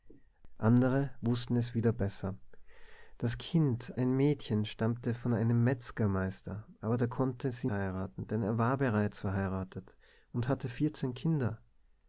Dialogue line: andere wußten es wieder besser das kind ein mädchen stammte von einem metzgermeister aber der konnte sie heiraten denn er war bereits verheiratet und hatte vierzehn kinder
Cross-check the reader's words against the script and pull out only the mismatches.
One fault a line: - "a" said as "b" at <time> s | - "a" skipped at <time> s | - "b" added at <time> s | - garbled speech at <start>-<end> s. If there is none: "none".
none